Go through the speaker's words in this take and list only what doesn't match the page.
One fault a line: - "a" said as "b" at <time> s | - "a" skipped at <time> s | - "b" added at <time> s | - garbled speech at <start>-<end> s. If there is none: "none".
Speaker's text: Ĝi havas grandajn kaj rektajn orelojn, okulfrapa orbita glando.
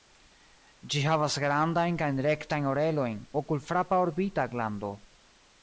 none